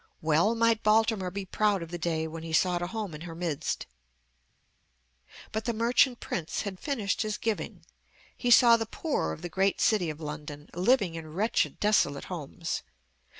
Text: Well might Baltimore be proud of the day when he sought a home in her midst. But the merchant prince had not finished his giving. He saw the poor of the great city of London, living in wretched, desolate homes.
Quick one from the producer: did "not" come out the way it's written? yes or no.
no